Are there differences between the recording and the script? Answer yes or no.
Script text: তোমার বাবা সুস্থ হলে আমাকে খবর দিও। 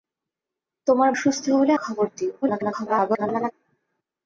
yes